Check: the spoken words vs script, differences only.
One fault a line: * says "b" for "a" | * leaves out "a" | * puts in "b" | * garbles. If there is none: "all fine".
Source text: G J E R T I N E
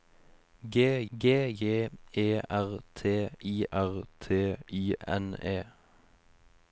* puts in "g"
* puts in "R T I"